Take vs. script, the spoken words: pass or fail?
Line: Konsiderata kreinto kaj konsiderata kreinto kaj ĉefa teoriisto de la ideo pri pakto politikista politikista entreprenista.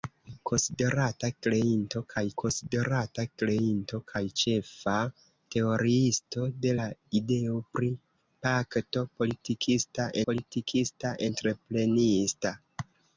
pass